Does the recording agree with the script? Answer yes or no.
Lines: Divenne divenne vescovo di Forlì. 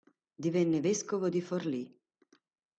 no